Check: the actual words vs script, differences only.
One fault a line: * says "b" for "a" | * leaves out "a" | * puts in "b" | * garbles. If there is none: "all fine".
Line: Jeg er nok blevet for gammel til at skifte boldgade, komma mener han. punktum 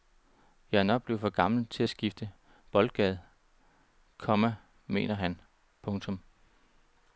all fine